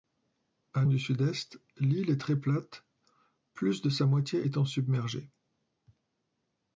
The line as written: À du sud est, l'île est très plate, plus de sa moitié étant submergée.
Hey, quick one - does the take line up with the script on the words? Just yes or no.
yes